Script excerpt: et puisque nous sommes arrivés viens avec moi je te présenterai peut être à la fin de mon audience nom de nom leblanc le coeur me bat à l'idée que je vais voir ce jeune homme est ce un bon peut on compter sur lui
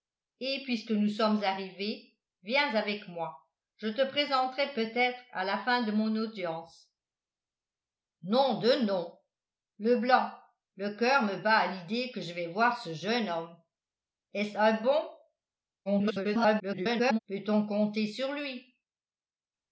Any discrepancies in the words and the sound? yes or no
yes